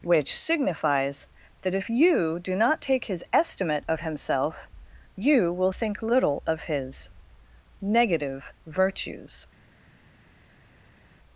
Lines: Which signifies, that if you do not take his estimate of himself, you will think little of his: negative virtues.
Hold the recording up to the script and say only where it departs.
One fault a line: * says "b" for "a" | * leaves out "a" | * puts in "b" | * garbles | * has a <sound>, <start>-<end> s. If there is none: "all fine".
all fine